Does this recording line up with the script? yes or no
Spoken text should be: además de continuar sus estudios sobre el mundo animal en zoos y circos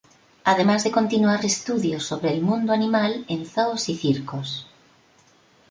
no